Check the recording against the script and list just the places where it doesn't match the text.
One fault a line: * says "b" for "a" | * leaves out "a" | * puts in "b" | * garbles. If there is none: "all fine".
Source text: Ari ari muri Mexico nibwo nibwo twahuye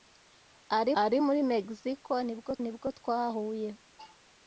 all fine